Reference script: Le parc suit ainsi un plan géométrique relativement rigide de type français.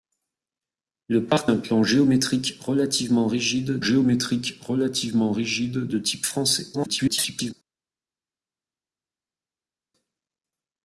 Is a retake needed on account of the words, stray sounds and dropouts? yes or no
yes